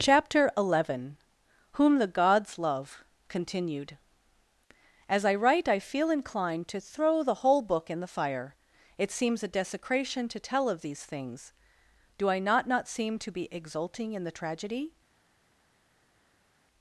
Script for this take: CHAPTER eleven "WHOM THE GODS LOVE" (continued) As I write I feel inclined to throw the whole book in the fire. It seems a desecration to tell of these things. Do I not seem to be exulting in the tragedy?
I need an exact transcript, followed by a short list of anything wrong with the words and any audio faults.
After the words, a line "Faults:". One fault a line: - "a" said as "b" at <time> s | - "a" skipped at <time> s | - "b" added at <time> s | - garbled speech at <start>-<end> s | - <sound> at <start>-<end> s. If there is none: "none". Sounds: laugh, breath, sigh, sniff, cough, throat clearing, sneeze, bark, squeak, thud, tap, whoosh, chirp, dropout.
CHAPTER eleven "WHOM THE GODS LOVE" (continued) As I write I feel inclined to throw the whole book in the fire. It seems a desecration to tell of these things. Do I not not seem to be exulting in the tragedy?
Faults:
- "not" added at 12.7 s